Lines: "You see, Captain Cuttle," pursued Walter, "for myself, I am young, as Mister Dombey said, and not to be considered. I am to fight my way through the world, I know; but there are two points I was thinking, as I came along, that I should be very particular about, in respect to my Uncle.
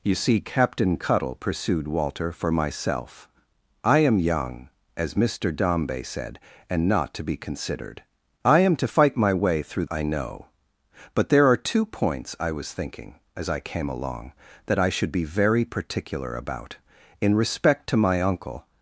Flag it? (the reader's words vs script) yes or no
yes